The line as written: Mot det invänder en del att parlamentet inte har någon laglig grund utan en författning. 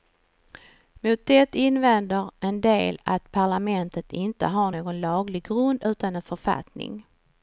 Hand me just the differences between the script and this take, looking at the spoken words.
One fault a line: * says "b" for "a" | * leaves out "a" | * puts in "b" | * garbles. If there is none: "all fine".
all fine